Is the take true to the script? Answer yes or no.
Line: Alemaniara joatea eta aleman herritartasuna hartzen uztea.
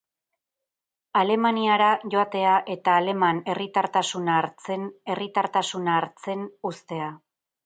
no